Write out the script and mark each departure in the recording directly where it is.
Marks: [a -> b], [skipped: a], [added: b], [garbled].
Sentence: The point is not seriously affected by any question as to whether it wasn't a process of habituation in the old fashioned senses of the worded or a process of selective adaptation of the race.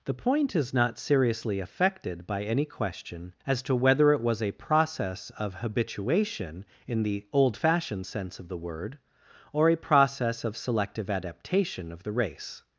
The point is not seriously affected by any question as to whether it [wasn't -> was] a process of habituation in the old fashioned [senses -> sense] of the [worded -> word] or a process of selective adaptation of the race.